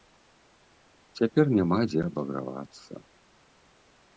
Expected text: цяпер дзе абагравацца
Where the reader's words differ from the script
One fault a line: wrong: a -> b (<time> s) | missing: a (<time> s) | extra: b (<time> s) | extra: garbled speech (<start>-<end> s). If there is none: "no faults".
extra: няма (1.6 s)